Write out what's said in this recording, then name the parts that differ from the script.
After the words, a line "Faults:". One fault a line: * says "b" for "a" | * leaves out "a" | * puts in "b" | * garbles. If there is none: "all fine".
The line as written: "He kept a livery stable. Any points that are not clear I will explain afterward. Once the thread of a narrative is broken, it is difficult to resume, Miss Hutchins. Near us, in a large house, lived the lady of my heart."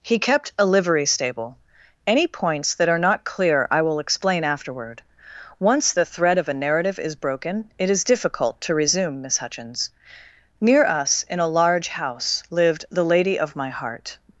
"He kept a livery stable. Any points that are not clear I will explain afterward. Once the thread of a narrative is broken, it is difficult to resume, Miss Hutchins. Near us, in a large house, lived the lady of my heart."
Faults:
all fine